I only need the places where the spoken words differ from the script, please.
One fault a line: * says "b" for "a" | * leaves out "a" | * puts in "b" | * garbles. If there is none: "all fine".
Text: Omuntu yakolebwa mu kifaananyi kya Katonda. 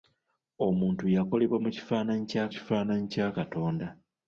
* puts in "kifaananyi kya"